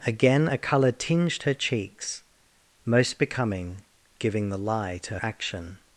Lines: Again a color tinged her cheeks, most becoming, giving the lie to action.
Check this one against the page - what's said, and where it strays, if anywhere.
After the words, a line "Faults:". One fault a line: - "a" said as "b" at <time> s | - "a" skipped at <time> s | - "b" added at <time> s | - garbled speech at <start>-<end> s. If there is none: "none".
Again a color tinged her cheeks, most becoming, giving the lie to action.
Faults:
none